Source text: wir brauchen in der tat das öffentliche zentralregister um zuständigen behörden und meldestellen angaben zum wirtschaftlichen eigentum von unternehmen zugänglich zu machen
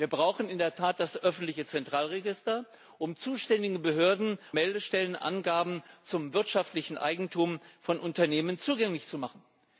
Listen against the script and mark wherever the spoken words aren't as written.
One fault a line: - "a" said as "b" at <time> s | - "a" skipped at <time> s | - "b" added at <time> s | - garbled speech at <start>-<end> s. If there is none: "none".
- "und" skipped at 4.4 s